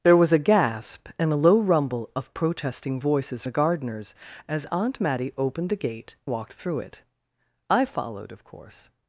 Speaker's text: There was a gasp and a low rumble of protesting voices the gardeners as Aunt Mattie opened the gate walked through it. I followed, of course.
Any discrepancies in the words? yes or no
no